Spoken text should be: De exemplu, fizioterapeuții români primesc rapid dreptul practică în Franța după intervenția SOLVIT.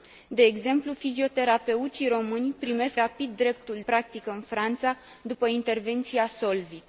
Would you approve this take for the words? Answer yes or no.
yes